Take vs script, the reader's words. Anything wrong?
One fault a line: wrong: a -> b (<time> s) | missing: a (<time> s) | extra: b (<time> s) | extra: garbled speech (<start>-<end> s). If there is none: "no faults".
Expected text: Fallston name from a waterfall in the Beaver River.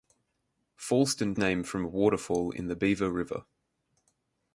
no faults